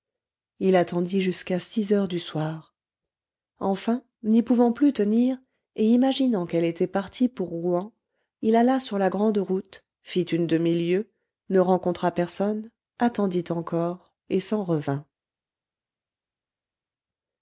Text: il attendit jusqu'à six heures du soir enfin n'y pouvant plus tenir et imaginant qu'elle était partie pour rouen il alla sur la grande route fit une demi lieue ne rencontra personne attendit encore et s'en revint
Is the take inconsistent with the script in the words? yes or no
no